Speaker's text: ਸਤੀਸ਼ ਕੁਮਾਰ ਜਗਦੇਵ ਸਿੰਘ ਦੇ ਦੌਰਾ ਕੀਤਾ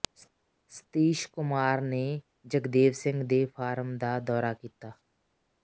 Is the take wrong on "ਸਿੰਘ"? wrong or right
right